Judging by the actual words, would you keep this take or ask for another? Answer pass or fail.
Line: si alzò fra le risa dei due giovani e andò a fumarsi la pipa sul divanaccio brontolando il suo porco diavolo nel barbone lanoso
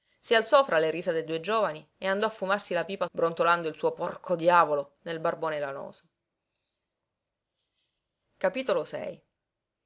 fail